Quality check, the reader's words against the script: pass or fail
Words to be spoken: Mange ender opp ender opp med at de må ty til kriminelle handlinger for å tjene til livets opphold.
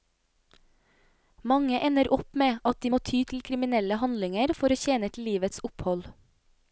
fail